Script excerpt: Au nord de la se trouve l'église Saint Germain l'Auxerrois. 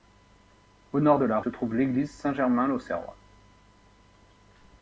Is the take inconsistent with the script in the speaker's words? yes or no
no